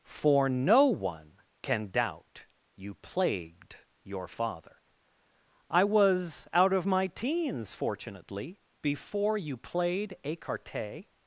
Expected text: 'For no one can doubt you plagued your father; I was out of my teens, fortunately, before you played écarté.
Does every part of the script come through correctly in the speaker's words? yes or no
yes